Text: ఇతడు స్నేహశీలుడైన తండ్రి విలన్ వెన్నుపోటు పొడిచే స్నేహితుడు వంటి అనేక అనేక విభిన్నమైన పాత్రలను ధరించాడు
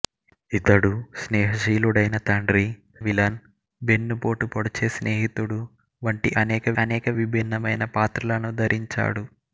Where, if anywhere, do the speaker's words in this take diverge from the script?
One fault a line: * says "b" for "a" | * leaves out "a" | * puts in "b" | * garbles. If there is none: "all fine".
all fine